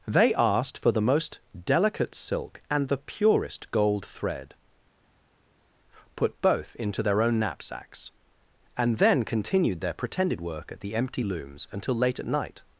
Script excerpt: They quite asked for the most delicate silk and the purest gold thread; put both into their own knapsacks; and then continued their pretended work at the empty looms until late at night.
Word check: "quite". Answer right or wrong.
wrong